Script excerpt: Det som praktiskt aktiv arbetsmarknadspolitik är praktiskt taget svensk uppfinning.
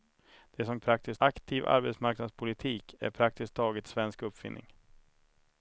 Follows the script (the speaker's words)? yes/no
yes